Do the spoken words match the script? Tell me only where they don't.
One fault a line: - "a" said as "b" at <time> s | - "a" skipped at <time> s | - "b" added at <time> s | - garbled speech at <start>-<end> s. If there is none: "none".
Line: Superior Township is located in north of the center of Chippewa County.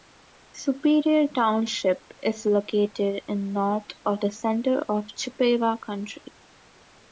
none